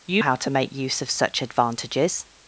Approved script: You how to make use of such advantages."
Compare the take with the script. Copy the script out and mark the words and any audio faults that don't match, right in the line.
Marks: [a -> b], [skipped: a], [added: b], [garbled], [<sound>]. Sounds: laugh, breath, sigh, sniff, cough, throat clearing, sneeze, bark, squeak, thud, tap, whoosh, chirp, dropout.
You how to make use of such advantages."